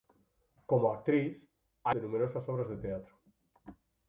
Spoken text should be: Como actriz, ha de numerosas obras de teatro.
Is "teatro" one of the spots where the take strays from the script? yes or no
no